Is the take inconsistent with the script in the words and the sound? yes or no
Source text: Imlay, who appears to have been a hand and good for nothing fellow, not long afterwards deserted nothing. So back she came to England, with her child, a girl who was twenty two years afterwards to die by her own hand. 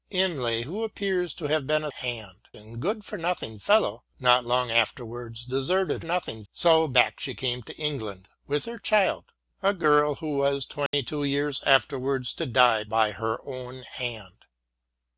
yes